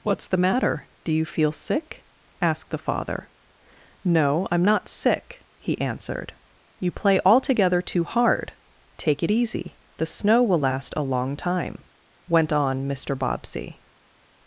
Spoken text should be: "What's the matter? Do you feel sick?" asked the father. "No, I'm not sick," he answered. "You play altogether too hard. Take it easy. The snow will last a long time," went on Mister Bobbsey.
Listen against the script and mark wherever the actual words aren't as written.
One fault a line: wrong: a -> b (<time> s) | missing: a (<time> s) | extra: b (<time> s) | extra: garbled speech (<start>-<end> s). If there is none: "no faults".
no faults